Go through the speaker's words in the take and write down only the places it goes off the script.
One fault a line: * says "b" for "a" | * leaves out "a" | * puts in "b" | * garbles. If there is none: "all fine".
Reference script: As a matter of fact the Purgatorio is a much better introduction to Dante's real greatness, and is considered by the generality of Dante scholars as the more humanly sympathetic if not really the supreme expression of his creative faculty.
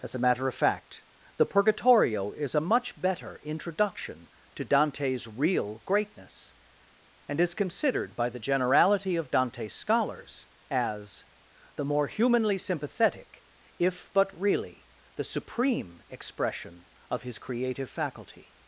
* says "but" for "not"